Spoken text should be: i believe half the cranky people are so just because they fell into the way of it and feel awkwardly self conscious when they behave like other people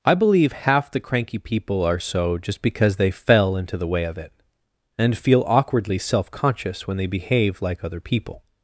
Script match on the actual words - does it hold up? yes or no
yes